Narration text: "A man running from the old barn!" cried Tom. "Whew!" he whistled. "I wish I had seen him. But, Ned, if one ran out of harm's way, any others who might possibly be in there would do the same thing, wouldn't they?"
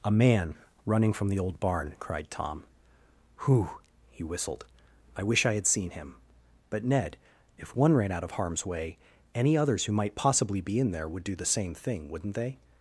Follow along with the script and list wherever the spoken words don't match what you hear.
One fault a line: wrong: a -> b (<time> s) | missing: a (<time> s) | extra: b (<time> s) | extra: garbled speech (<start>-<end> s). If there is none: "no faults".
no faults